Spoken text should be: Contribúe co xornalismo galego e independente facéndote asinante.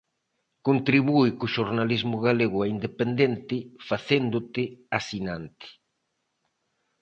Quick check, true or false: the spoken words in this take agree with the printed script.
true